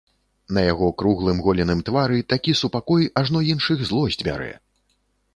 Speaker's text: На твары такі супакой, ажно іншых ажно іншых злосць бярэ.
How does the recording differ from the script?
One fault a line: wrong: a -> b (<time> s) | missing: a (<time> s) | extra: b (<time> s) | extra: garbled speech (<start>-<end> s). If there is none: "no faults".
extra: яго круглым голеным (0.7 s)
missing: ажно іншых (3.8 s)